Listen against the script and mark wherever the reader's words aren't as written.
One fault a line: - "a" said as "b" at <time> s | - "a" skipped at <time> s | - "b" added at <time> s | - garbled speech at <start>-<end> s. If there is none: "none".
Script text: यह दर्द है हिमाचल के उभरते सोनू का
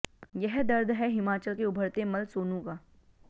- "मल्ल" added at 2.0 s